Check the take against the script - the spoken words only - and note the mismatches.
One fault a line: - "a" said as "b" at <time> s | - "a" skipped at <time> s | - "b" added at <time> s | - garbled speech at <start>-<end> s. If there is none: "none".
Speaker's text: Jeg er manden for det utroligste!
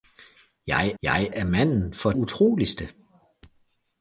- "jeg" added at 1.0 s
- "det" skipped at 2.1 s